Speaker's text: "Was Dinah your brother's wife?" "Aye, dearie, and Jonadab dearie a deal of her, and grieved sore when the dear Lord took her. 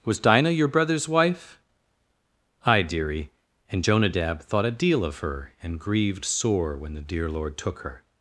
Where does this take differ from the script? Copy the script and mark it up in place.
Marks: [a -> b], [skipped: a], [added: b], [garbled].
"Was Dinah your brother's wife?" "Aye, dearie, and Jonadab [dearie -> thought] a deal of her, and grieved sore when the dear Lord took her.